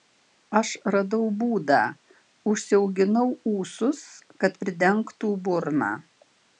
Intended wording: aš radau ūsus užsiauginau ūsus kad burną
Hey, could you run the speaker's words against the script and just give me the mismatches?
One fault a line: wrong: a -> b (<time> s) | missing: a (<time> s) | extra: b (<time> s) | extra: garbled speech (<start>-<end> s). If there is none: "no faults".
wrong: ūsus -> būdą (1.4 s)
extra: pridengtų (4.6 s)